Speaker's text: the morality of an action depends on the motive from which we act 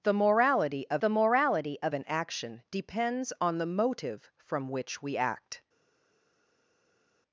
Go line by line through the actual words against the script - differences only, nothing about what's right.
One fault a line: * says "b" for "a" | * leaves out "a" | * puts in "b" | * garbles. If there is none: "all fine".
* puts in "the morality of"